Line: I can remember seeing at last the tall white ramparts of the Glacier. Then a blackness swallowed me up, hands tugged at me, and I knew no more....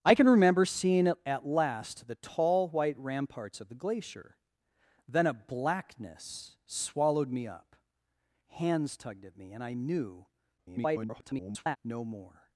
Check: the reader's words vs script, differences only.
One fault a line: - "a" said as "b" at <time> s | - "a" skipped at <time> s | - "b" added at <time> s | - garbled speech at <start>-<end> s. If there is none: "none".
- garbled speech at 10.6-11.8 s